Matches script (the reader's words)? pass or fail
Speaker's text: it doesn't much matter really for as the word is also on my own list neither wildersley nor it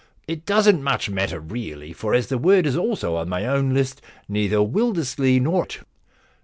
pass